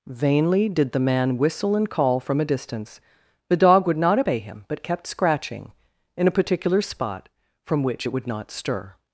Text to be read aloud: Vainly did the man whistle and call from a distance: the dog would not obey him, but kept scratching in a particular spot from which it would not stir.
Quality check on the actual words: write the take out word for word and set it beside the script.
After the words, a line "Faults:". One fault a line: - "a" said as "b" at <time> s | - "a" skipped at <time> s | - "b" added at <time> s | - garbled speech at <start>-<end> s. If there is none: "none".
Vainly did the man whistle and call from a distance: the dog would not obey him, but kept scratching in a particular spot from which it would not stir.
Faults:
none